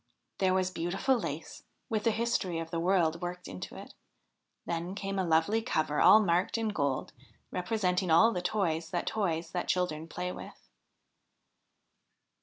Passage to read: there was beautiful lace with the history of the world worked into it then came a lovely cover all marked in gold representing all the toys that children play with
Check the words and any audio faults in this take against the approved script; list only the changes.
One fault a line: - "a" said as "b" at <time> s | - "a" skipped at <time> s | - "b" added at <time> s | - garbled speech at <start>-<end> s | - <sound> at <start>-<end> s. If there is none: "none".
- "toys that" added at 9.0 s